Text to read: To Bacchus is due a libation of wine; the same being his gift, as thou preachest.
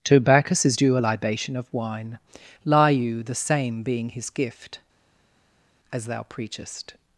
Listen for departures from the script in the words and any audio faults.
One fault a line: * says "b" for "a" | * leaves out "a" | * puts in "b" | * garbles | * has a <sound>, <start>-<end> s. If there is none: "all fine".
* puts in "lie you"